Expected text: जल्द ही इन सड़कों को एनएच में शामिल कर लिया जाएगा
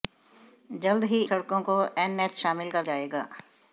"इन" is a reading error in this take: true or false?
true